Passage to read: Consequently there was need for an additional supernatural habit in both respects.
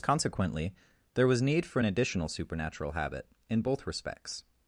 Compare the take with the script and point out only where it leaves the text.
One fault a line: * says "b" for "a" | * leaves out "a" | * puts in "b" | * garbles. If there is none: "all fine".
all fine